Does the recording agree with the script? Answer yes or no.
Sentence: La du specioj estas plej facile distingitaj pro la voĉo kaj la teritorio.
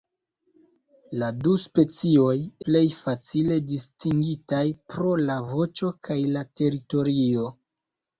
no